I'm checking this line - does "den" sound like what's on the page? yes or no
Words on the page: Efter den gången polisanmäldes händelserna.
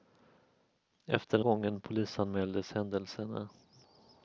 yes